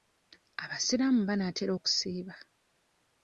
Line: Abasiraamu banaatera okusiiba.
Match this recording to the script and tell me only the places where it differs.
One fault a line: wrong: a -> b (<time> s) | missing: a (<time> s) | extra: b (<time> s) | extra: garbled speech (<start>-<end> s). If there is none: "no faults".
no faults